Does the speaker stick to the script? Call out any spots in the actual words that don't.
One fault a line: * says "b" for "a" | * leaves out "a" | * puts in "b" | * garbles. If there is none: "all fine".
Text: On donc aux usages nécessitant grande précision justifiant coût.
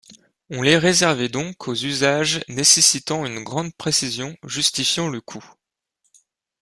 * puts in "les réservait"
* puts in "une"
* puts in "le"